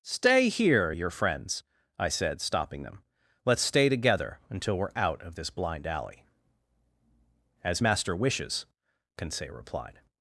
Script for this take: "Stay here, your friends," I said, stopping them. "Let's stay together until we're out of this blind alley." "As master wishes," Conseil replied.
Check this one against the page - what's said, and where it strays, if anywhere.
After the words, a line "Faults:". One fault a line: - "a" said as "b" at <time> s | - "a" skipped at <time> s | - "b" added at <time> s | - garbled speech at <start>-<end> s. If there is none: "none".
"Stay here, your friends," I said, stopping them. "Let's stay together until we're out of this blind alley." "As master wishes," Conseil replied.
Faults:
none